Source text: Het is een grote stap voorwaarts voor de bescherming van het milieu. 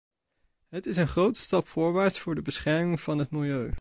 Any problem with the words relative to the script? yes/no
no